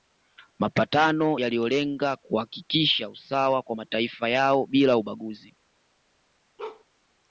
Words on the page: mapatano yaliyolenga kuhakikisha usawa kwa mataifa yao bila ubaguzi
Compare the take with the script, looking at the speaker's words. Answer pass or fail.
pass